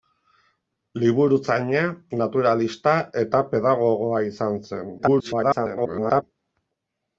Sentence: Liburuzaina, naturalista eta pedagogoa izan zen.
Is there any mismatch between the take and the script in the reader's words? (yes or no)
yes